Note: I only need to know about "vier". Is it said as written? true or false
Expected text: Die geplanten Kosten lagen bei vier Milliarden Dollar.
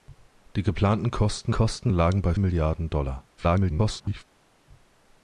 false